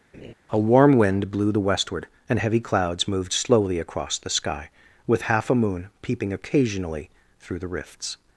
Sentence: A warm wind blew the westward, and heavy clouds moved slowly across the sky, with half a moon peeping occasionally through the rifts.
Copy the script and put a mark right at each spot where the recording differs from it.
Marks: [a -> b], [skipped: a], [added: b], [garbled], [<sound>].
[laugh] A warm wind blew the westward, and heavy clouds moved slowly across the sky, with half a moon peeping occasionally through the rifts.